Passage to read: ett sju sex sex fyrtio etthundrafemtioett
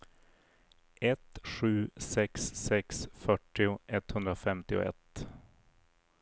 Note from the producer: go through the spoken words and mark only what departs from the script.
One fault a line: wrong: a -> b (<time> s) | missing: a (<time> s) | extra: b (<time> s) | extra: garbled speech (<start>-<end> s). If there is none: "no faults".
no faults